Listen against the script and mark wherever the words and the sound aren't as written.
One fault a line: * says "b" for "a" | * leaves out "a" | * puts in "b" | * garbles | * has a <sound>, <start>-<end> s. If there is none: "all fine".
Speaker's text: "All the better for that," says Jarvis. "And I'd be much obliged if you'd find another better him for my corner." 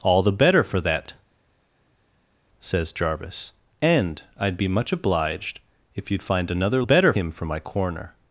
all fine